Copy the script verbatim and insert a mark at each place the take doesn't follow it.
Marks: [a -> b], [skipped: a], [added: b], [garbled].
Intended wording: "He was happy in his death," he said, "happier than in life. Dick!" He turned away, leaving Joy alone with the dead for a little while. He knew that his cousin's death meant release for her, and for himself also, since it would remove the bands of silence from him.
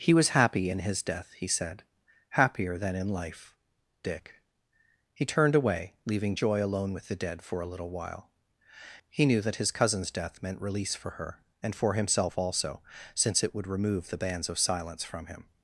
"He was happy in his death," he said, "happier than in life. Dick!" He turned away, leaving Joy alone with the dead for a little while. He knew that his cousin's death meant release for her, and for himself also, since it would remove the bands of silence from him.